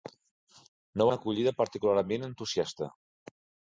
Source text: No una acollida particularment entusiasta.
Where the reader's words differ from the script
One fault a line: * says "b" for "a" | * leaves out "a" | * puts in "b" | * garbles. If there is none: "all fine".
all fine